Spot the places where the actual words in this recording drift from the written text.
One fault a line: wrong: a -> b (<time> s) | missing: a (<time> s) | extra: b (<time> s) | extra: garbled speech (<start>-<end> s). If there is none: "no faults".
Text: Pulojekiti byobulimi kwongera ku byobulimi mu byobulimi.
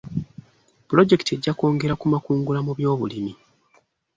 wrong: byobulimi -> ejja (1.4 s)
wrong: byobulimi -> makungula (2.1 s)